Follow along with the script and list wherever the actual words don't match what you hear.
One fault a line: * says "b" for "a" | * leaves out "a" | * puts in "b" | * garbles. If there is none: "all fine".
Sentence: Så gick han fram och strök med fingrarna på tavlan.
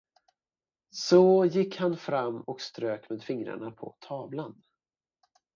all fine